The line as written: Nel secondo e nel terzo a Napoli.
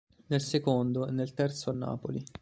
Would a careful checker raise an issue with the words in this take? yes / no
no